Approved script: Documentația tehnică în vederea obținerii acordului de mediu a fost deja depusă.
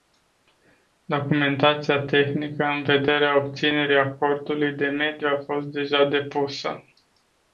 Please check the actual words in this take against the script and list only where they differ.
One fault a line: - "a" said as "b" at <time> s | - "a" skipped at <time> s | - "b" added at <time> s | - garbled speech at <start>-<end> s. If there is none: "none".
none